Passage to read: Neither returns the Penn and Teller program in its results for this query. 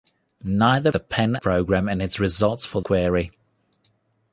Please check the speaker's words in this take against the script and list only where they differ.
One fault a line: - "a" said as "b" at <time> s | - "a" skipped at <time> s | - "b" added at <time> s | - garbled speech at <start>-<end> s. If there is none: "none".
- "returns" skipped at 0.9 s
- "and Teller" skipped at 1.4 s
- "this" skipped at 2.8 s